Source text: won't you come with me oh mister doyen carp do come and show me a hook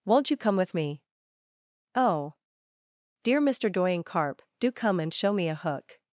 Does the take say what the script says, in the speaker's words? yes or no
no